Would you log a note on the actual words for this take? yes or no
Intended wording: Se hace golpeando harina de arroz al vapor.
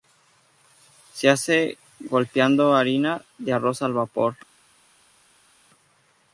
no